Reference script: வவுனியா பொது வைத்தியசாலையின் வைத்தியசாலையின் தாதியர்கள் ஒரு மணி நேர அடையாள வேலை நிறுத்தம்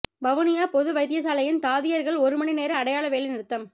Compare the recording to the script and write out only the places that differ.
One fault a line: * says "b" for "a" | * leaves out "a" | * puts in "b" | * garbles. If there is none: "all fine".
* leaves out "வைத்தியசாலையின்"